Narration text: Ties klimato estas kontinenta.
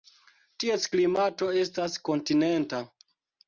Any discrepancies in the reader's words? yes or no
no